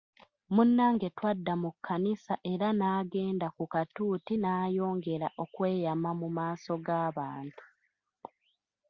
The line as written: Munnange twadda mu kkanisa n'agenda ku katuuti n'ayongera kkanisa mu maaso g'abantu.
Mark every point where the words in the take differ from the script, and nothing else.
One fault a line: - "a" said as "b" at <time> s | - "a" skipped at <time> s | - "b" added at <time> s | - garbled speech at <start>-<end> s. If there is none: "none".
- "era" added at 2.5 s
- "kkanisa" said as "okweyama" at 5.4 s